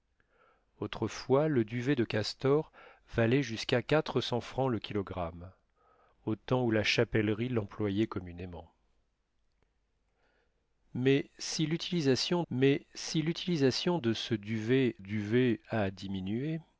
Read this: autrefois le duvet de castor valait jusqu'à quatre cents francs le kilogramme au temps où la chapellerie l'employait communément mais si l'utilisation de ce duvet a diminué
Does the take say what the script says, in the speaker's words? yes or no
no